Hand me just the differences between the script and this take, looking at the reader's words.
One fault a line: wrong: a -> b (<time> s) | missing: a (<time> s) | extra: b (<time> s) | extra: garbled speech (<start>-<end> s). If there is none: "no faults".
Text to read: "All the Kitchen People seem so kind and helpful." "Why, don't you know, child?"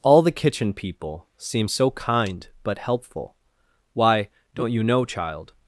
wrong: and -> but (2.6 s)